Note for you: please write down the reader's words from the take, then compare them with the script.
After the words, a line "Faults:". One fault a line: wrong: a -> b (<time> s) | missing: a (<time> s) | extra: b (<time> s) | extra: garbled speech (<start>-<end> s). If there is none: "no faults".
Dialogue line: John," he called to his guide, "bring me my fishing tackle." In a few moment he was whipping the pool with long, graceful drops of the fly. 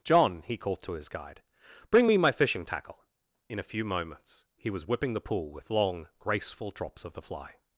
John," he called to his guide, "bring me my fishing tackle." In a few moments he was whipping the pool with long, graceful drops of the fly.
Faults:
wrong: moment -> moments (3.8 s)